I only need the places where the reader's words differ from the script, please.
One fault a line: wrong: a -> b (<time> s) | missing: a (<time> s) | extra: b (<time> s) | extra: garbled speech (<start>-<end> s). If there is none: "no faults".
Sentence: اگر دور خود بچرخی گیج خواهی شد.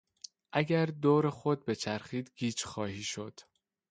no faults